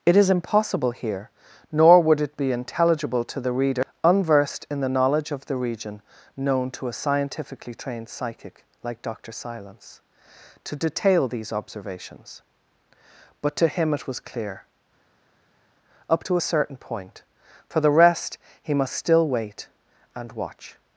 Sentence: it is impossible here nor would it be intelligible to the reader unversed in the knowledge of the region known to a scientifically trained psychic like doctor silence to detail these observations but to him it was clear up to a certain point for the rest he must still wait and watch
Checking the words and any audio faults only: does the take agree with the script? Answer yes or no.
yes